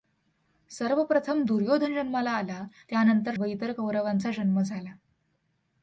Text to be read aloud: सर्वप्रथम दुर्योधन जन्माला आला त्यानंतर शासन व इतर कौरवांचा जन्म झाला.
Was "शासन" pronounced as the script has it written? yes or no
no